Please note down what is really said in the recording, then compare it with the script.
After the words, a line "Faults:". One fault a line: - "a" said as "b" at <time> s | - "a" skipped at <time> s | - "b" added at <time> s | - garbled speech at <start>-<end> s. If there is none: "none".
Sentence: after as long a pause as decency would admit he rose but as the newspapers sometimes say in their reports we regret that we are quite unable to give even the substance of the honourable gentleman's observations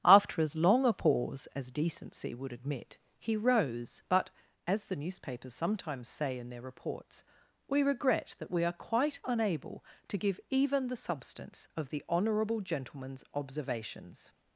after as long a pause as decency would admit he rose but as the newspapers sometimes say in their reports we regret that we are quite unable to give even the substance of the honourable gentleman's observations
Faults:
none